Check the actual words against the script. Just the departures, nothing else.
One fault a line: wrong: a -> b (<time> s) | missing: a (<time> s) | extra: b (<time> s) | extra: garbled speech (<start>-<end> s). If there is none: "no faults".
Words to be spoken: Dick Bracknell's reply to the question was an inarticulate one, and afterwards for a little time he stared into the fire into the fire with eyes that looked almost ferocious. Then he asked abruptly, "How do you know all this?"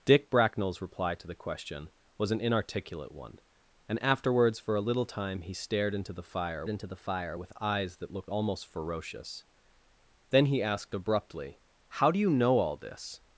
no faults